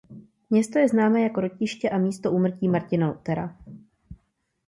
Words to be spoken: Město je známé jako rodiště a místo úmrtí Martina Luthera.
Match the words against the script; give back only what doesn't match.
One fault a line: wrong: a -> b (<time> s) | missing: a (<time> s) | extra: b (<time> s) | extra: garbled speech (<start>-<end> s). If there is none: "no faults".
no faults